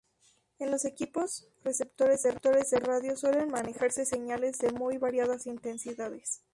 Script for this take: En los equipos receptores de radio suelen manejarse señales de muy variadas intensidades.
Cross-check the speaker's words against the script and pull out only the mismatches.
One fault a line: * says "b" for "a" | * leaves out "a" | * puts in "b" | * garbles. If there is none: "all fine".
all fine